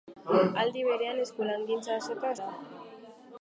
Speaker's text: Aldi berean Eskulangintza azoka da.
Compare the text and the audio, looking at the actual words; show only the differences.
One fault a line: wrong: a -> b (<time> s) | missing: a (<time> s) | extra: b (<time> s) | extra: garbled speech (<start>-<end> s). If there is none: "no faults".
no faults